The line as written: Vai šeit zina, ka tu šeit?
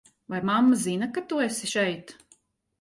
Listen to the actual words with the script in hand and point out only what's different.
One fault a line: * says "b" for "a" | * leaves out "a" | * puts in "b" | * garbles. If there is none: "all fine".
* says "mamma" for "šeit"
* puts in "esi"